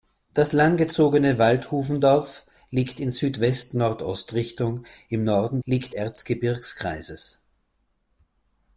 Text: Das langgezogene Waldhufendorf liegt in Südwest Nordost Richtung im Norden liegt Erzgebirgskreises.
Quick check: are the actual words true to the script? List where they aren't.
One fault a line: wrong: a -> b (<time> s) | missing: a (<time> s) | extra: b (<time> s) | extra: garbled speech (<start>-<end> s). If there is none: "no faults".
no faults